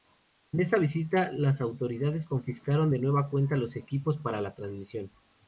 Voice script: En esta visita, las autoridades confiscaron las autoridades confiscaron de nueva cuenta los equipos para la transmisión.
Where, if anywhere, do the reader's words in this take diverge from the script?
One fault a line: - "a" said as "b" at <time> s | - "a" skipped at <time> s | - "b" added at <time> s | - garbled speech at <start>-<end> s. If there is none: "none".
- "las autoridades confiscaron" skipped at 2.9 s